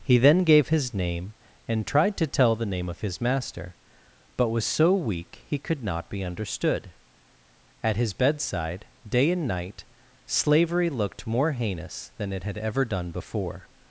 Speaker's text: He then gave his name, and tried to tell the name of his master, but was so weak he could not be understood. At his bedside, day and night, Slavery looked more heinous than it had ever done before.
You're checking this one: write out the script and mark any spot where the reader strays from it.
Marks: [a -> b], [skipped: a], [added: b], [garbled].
He then gave his name, and tried to tell the name of his master, but was so weak he could not be understood. At his bedside, day and night, Slavery looked more heinous than it had ever done before.